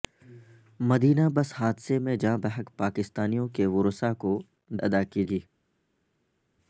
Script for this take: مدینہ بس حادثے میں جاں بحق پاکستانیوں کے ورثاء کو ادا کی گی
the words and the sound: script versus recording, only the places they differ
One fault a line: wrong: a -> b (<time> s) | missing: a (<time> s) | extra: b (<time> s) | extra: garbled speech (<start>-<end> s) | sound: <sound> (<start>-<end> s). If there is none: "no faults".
no faults